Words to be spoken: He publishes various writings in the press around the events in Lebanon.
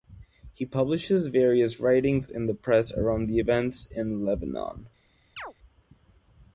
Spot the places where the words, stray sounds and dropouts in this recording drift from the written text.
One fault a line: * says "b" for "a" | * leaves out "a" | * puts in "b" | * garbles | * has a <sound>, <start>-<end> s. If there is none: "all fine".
* has a chirp, 5.4-5.5 s